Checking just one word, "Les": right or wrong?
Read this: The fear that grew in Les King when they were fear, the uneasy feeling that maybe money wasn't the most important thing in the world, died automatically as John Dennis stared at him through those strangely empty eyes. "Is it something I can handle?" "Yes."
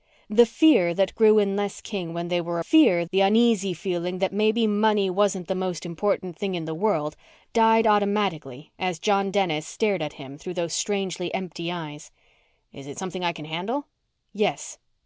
right